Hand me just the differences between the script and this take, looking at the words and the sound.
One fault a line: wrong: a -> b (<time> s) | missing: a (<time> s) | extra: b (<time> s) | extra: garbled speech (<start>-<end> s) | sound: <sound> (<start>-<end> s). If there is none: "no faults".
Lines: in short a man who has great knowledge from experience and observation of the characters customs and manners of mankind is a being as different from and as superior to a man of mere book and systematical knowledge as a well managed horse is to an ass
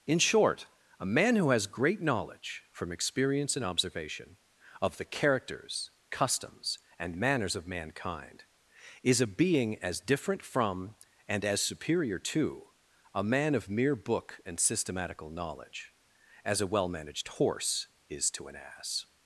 no faults